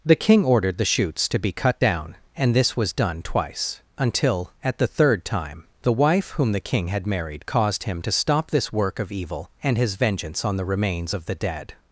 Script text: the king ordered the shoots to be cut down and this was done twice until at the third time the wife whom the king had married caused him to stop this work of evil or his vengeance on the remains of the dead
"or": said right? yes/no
no